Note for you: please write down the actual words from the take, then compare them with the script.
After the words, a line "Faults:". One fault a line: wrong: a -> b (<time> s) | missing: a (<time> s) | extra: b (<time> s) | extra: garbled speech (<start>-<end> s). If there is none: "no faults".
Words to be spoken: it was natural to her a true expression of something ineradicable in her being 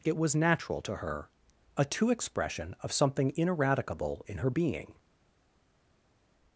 it was natural to her a two expression of something ineradicable in her being
Faults:
wrong: true -> two (1.9 s)